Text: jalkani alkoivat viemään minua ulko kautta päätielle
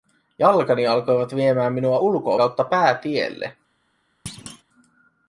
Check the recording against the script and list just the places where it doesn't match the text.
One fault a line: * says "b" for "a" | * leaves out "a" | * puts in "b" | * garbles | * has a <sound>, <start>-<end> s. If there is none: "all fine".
* has a thud, 4.3-4.6 s